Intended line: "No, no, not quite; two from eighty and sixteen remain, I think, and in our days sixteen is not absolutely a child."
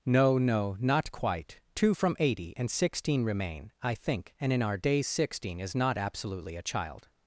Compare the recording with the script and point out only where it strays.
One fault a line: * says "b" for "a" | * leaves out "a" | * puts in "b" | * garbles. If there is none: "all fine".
all fine